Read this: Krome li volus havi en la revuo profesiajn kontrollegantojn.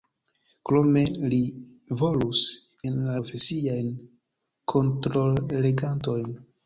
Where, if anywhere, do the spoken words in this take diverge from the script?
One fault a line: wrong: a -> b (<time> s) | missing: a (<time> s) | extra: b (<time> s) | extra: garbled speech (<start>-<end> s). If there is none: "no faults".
missing: havi (2.4 s)
missing: revuo (3.2 s)